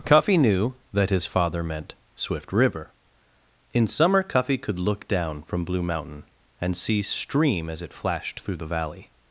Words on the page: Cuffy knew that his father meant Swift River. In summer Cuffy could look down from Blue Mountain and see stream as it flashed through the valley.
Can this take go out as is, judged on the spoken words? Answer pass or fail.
pass